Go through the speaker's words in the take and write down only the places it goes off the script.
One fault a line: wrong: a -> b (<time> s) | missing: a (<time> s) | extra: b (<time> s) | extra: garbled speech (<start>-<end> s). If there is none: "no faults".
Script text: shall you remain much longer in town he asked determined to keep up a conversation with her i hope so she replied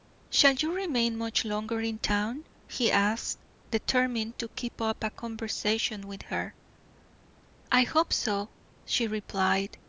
no faults